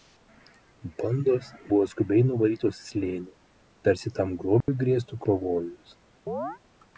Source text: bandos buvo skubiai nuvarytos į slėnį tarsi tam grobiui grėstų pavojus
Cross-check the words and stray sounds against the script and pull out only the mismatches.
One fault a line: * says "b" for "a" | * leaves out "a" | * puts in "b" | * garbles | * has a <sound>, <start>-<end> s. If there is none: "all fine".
* has a dropout, 4.6-4.7 s
* has a chirp, 6.3-6.6 s